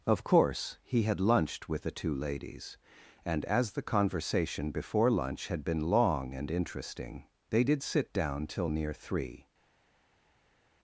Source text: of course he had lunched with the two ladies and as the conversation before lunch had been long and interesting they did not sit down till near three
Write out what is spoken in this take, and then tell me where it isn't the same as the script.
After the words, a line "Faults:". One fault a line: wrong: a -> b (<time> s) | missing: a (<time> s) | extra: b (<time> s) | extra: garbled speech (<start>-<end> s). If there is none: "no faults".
of course he had lunched with the two ladies and as the conversation before lunch had been long and interesting they did sit down till near three
Faults:
missing: not (7.8 s)